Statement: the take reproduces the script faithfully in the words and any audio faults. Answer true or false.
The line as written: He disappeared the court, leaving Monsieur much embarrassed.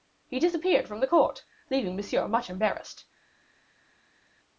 false